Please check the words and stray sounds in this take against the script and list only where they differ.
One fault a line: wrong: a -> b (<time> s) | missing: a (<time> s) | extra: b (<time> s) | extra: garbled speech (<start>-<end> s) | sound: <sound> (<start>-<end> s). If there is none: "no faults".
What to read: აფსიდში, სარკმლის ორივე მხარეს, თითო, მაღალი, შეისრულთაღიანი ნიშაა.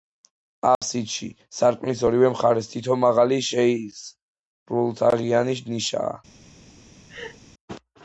sound: dropout (0.7-0.8 s)
sound: laugh (7.1-7.4 s)